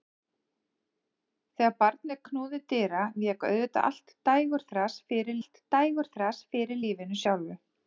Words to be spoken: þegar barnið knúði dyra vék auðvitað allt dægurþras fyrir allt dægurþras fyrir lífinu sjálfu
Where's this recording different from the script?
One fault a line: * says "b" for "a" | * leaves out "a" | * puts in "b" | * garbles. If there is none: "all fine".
all fine